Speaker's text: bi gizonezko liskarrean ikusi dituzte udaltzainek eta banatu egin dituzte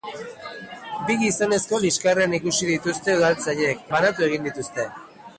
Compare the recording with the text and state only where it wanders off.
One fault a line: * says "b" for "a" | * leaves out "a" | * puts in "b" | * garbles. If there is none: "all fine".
* leaves out "eta"